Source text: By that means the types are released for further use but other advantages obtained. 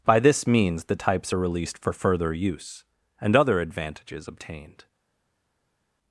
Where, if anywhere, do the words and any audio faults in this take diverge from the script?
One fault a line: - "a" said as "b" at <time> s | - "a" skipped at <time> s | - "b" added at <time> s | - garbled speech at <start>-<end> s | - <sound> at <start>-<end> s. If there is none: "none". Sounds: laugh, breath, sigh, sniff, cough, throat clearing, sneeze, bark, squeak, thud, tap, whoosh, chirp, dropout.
- "that" said as "this" at 0.2 s
- "but" said as "and" at 3.2 s